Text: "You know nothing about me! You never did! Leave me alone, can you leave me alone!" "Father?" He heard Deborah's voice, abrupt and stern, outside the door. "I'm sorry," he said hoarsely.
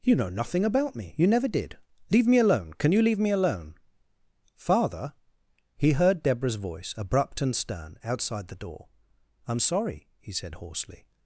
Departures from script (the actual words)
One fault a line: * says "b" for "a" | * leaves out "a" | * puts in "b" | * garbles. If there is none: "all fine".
all fine